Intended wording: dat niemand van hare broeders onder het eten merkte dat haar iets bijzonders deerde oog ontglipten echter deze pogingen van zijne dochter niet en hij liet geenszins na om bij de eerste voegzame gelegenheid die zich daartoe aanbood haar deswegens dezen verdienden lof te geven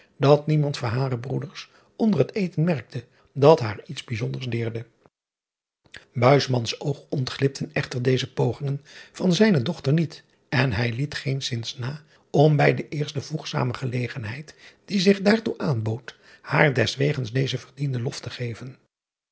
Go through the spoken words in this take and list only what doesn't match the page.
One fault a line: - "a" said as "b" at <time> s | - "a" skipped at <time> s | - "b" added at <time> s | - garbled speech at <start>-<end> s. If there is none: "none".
none